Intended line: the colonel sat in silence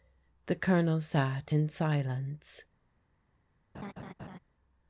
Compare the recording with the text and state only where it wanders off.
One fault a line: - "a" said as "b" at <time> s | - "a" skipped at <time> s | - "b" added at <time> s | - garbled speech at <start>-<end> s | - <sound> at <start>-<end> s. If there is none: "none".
- laugh at 3.7-4.4 s